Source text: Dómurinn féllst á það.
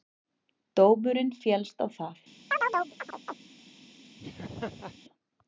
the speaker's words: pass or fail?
pass